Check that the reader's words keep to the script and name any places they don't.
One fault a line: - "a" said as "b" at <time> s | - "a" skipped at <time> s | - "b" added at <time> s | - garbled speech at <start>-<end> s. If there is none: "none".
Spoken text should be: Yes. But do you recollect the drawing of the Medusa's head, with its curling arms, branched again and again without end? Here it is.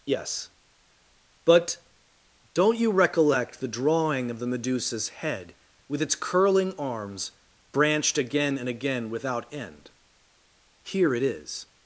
- "do" said as "don't" at 2.5 s